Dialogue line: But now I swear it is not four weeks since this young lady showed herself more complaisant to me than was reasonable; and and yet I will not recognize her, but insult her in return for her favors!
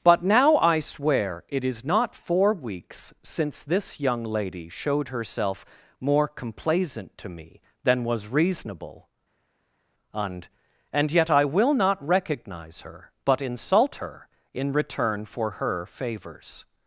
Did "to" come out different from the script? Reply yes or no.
no